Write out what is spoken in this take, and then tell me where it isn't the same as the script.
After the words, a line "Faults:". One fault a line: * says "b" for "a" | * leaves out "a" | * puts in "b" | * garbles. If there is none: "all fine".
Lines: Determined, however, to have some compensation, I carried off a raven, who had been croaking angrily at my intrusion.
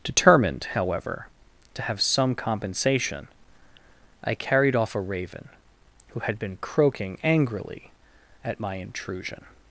Determined, however, to have some compensation, I carried off a raven, who had been croaking angrily at my intrusion.
Faults:
all fine